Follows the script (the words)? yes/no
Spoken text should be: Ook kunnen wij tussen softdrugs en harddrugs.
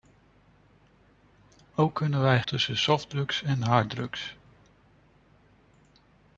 yes